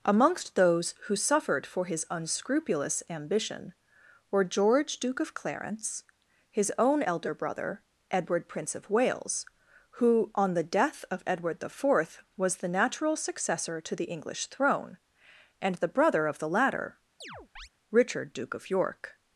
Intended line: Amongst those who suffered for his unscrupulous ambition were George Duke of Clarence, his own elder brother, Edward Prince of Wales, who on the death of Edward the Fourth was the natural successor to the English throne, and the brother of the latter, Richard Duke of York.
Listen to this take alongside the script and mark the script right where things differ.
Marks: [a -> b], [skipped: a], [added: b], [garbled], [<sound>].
Amongst those who suffered for his unscrupulous ambition were George Duke of Clarence, his own elder brother, Edward Prince of Wales, who on the death of Edward the Fourth was the natural successor to the English throne, and the brother of the latter, [chirp] Richard Duke of York.